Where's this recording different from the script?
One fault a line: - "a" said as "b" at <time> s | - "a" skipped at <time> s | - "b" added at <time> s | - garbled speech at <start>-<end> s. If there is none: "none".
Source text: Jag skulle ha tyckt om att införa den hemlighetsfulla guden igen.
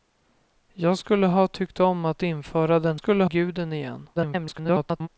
- "hemlighetsfulla" said as "skulle" at 2.9 s
- garbled speech at 4.2-5.1 s